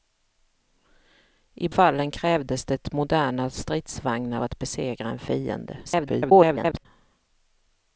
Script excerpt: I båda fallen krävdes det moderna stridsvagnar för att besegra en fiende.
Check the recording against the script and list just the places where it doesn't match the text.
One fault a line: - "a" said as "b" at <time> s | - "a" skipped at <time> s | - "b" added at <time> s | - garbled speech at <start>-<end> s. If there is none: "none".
- "båda" skipped at 1.7 s
- "för" skipped at 4.4 s
- garbled speech at 5.8-6.9 s